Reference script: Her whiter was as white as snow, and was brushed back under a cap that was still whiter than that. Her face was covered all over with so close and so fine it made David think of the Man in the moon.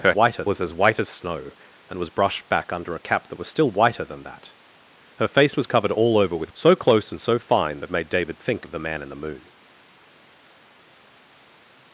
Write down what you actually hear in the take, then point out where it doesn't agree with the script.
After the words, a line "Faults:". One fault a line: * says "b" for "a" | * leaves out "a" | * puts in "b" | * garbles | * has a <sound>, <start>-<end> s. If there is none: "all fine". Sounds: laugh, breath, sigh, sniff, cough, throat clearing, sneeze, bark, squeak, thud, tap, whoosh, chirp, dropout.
Her whiter was as white as snow, and was brushed back under a cap that was still whiter than that. Her face was covered all over with so close and so fine it made David think of the Man in the moon.
Faults:
all fine